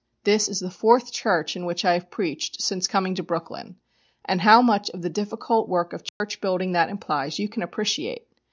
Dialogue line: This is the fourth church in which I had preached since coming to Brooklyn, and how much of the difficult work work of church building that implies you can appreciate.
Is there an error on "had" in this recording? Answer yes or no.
yes